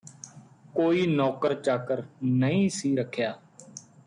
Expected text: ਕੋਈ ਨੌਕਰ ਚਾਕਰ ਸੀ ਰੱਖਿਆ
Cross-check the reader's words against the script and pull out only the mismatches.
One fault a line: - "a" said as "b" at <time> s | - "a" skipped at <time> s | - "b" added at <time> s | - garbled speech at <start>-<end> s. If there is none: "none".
- "ਨਹੀਂ" added at 2.2 s